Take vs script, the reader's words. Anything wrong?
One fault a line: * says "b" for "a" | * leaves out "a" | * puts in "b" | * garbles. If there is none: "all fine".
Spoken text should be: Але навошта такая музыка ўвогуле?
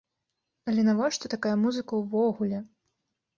all fine